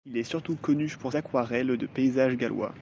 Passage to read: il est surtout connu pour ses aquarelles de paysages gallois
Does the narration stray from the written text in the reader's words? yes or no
yes